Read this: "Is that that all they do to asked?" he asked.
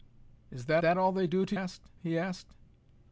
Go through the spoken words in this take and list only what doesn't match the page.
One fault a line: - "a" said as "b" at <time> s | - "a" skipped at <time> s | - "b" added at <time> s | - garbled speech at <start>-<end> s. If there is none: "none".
none